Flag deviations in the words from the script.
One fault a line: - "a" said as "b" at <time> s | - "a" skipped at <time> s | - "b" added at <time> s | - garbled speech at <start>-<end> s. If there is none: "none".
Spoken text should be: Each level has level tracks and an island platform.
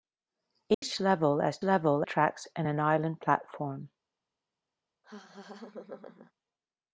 none